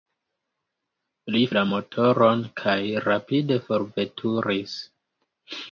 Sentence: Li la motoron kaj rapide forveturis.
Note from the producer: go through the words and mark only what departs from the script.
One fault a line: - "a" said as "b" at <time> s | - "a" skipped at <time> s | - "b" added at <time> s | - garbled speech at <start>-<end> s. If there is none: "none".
none